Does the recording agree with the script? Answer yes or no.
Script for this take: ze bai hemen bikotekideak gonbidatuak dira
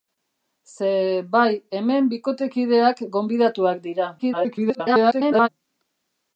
no